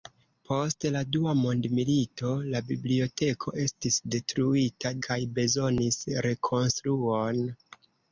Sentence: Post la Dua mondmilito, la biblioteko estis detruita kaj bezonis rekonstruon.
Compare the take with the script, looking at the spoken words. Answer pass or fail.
pass